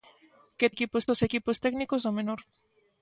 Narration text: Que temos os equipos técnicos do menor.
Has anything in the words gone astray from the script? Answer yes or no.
yes